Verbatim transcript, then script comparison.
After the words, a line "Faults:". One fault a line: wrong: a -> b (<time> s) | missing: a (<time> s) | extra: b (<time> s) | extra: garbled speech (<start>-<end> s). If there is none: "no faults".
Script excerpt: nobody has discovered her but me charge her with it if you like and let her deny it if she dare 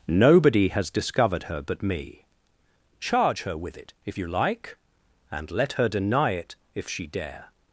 nobody has discovered her but me charge her with it if you like and let her deny it if she dare
Faults:
no faults